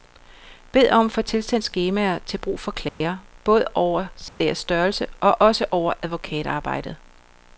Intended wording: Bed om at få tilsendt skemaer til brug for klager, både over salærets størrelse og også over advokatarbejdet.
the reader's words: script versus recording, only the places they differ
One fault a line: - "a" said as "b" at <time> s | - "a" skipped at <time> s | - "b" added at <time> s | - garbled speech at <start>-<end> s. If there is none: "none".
none